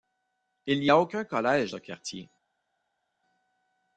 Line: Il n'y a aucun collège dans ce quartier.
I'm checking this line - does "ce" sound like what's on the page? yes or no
no